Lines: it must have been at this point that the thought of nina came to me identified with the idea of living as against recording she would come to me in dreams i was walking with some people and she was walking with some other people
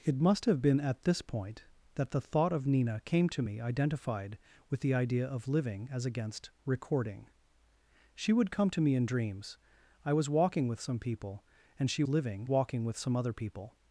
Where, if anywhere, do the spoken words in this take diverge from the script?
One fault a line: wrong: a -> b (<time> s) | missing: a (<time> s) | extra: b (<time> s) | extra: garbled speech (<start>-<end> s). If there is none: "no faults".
wrong: was -> living (12.1 s)